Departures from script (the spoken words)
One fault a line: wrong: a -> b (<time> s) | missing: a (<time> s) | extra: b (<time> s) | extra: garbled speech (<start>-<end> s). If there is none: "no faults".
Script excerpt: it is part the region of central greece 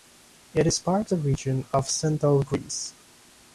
no faults